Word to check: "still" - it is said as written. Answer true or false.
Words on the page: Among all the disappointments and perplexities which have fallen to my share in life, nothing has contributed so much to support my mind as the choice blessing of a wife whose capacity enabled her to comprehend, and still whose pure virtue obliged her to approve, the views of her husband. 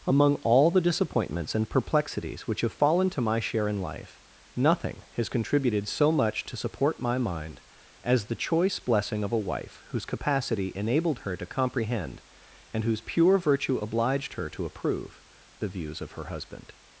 false